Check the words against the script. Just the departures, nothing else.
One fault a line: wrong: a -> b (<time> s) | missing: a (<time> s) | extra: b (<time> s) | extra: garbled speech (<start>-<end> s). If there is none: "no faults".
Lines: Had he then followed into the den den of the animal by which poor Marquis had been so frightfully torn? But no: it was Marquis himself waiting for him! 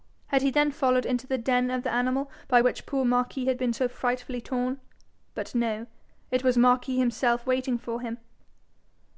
missing: den (1.7 s)